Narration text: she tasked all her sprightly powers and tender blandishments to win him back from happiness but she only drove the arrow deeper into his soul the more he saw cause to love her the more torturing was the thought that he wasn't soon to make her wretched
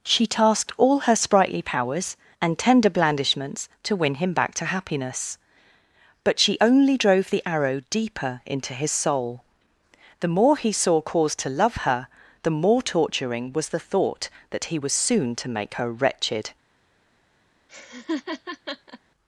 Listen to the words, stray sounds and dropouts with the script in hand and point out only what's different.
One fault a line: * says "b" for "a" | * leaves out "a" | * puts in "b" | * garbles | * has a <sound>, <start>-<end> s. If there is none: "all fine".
* says "to" for "from"
* says "was" for "wasn't"
* has a laugh, 17.7-19.0 s